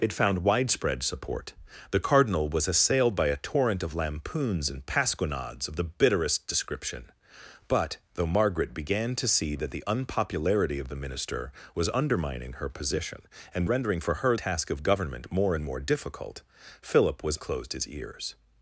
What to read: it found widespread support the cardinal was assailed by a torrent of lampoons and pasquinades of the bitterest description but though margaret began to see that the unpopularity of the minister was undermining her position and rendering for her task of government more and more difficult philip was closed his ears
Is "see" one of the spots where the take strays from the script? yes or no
no